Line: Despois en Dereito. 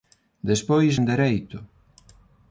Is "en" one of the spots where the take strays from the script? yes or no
no